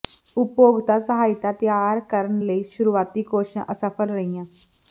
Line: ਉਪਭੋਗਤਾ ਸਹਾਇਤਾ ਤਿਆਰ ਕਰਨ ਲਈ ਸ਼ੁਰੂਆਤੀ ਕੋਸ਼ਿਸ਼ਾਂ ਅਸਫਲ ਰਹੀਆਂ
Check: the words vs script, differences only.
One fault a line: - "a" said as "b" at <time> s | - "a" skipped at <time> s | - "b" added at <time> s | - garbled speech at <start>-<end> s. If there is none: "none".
none